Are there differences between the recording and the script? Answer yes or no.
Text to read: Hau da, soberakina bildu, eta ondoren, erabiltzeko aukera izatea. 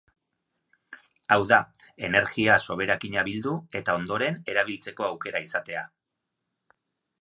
yes